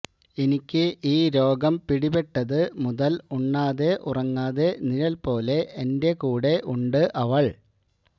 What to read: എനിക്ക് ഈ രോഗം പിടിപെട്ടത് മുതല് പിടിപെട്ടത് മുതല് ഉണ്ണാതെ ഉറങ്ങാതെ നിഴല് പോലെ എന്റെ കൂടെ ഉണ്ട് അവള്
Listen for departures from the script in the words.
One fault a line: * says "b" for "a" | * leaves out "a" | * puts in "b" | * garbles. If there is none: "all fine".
* leaves out "പിടിപെട്ടത് മുതല്"